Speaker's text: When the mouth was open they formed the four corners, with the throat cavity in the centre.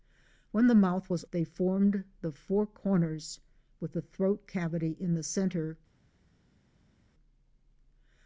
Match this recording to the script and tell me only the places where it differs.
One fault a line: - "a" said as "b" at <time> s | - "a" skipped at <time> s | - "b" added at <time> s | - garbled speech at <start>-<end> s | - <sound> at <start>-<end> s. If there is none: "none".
- "open" skipped at 1.2 s